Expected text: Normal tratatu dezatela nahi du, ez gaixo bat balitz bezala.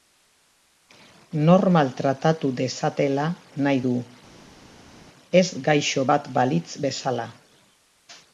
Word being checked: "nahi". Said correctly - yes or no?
yes